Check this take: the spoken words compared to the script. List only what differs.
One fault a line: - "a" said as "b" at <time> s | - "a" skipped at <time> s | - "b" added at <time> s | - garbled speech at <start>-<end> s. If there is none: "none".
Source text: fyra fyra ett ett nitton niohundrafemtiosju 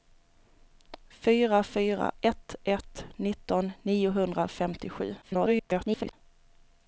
- garbled speech at 5.2-6.1 s